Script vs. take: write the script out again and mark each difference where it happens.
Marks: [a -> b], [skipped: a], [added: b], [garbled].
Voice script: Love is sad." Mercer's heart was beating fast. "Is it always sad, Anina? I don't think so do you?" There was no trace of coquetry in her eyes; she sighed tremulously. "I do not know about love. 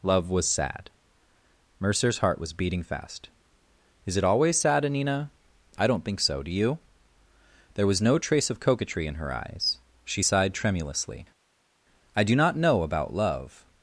Love [is -> was] sad." Mercer's heart was beating fast. "Is it always sad, Anina? I don't think so do you?" There was no trace of coquetry in her eyes; she sighed tremulously. "I do not know about love.